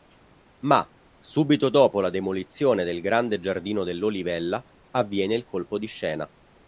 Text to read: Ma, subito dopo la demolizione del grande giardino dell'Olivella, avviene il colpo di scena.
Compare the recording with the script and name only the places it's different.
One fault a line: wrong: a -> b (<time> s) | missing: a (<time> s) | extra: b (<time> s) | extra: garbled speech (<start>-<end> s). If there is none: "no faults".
no faults